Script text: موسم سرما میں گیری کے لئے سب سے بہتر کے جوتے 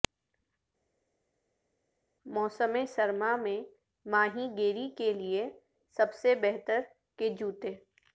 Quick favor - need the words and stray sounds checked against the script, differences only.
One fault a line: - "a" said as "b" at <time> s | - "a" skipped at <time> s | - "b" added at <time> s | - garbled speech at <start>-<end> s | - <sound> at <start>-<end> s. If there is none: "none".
- "ماہی" added at 4.0 s